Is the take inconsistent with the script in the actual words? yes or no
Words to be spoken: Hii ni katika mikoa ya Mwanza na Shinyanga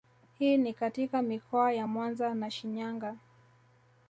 no